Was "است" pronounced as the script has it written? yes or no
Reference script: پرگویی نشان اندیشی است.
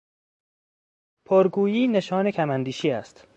yes